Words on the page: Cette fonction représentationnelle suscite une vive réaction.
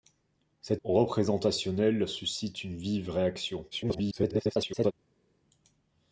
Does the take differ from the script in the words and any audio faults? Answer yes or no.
yes